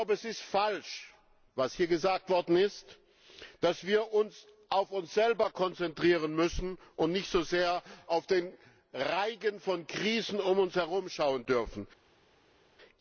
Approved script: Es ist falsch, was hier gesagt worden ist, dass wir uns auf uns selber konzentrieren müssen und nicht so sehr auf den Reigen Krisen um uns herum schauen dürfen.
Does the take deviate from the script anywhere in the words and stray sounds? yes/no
yes